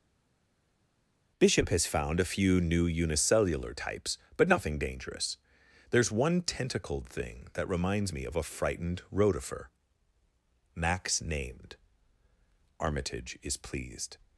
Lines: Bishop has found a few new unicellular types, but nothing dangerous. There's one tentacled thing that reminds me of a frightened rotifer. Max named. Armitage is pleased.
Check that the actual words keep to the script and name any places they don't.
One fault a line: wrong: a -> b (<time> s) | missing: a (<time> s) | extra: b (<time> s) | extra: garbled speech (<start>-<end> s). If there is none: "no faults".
no faults